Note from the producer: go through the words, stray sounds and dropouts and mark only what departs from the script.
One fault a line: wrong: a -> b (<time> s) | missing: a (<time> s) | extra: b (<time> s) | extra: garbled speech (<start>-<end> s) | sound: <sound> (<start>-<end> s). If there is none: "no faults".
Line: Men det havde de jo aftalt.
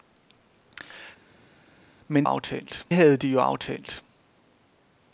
wrong: det -> aftalt (2.2 s)